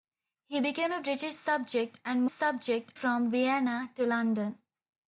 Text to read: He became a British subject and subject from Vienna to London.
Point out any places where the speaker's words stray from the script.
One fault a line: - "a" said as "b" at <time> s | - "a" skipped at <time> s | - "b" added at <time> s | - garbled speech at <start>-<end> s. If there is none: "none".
none